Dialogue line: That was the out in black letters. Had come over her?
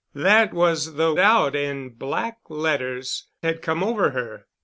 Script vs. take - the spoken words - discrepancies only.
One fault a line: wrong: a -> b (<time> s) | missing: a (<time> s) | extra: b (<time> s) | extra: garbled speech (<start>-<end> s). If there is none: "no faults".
no faults